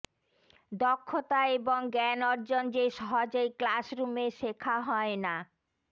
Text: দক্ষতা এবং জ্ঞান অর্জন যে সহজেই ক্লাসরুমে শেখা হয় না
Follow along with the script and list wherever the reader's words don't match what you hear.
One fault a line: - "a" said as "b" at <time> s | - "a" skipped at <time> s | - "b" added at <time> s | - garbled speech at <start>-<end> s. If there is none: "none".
none